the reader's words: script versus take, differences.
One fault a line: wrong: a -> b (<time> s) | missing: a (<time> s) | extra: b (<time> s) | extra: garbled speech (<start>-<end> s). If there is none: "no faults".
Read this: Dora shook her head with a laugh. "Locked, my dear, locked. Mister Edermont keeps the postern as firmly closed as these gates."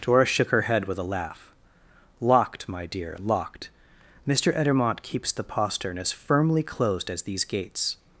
no faults